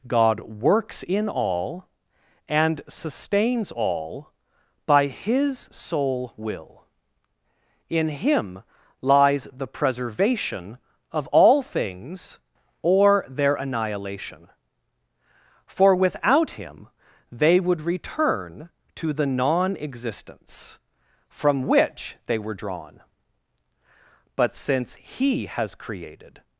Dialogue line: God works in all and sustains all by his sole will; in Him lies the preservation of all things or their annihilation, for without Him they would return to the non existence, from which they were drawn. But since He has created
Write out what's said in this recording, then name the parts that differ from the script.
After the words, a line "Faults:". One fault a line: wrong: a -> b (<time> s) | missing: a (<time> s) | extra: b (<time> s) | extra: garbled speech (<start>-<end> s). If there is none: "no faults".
God works in all and sustains all by his sole will; in Him lies the preservation of all things or their annihilation, for without Him they would return to the non existence, from which they were drawn. But since He has created
Faults:
no faults